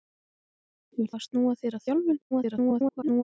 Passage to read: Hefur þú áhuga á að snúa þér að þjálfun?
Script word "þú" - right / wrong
wrong